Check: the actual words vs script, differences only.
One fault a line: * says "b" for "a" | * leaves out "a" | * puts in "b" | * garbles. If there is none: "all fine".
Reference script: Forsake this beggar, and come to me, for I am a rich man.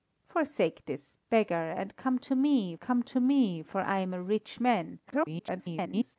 * puts in "come to me"
* garbles